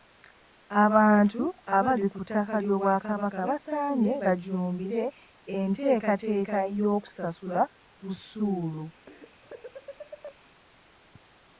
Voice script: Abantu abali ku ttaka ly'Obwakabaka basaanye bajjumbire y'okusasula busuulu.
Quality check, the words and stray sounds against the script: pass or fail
fail